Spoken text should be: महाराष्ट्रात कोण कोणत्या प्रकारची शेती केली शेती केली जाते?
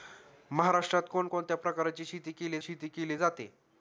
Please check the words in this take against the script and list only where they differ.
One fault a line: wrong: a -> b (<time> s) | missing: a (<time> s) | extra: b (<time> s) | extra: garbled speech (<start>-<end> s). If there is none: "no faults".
no faults